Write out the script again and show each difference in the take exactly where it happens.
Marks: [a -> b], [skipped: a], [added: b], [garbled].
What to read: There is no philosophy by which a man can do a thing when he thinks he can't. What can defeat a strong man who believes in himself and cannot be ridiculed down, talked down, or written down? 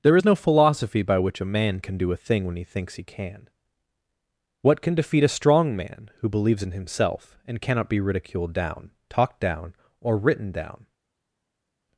There is no philosophy by which a man can do a thing when he thinks he [can't. -> can] What can defeat a strong man who believes in himself and cannot be ridiculed down, talked down, or written down?